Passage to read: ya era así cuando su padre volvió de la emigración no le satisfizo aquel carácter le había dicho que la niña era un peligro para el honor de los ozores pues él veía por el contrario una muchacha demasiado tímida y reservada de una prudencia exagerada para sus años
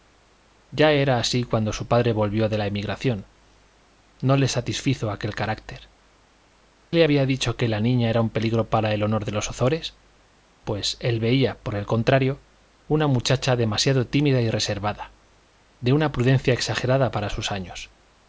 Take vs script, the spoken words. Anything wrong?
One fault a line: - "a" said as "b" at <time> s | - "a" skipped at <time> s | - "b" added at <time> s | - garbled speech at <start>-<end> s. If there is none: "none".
none